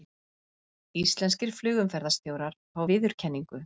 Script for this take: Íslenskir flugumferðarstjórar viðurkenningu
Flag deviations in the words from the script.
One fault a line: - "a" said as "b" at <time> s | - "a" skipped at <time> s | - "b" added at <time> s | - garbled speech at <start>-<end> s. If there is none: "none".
- "fá" added at 2.8 s